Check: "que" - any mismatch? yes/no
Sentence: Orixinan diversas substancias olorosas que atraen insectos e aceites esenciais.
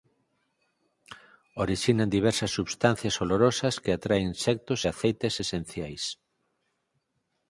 no